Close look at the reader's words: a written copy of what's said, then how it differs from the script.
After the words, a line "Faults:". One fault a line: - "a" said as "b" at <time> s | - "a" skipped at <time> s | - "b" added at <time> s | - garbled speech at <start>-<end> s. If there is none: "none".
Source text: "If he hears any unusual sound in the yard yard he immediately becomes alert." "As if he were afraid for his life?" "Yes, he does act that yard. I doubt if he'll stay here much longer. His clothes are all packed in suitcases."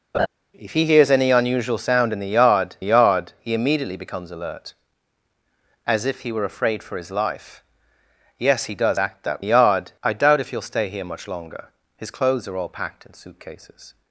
"If he hears any unusual sound in the yard yard he immediately becomes alert." "As if he were afraid for his life?" "Yes, he does act that yard. I doubt if he'll stay here much longer. His clothes are all packed in suitcases."
Faults:
none